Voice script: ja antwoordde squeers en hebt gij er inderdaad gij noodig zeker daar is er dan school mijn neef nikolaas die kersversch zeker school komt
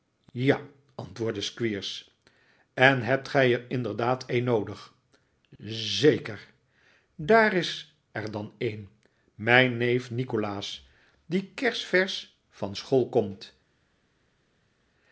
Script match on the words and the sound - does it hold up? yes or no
no